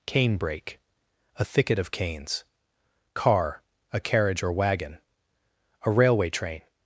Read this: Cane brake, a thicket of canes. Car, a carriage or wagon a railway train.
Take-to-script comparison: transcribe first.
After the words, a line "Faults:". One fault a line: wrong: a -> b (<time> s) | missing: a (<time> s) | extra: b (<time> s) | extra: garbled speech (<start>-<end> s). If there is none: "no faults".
Cane brake, a thicket of canes. Car, a carriage or wagon a railway train.
Faults:
no faults